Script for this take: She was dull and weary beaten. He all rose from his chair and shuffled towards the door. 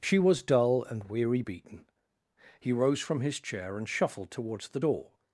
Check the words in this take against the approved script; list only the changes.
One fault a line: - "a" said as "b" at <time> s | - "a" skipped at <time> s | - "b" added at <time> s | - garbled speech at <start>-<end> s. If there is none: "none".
- "all" skipped at 2.7 s